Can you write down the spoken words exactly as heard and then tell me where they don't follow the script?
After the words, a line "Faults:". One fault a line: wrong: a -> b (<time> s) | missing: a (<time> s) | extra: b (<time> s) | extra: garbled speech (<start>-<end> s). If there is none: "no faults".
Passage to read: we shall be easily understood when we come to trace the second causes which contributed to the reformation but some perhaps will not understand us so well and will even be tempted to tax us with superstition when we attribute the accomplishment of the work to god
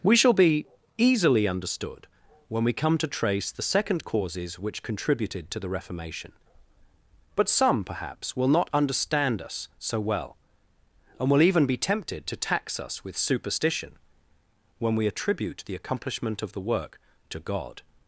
we shall be easily understood when we come to trace the second causes which contributed to the reformation but some perhaps will not understand us so well and will even be tempted to tax us with superstition when we attribute the accomplishment of the work to god
Faults:
no faults